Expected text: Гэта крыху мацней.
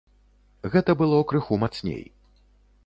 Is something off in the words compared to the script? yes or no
yes